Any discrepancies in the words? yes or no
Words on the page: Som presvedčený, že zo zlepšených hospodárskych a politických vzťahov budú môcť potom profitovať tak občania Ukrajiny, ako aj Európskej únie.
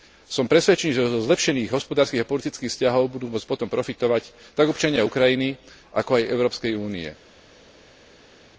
no